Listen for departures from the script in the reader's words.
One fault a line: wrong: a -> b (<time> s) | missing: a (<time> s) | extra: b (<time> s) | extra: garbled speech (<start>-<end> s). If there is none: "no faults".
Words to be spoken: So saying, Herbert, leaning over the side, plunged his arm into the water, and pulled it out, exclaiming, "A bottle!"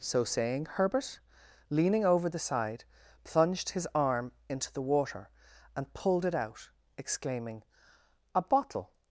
no faults